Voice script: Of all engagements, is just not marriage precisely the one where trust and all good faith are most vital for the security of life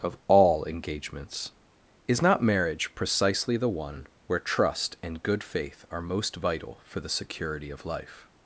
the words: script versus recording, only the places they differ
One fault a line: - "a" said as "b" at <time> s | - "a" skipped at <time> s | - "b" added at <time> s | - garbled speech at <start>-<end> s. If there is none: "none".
- "just" skipped at 2.2 s
- "all" skipped at 5.2 s